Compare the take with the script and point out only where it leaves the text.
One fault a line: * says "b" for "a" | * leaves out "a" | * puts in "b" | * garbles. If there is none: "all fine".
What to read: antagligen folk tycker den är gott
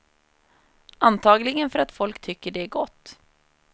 * puts in "för att"
* says "det" for "den"